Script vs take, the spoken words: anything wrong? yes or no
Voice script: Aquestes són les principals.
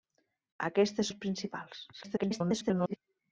yes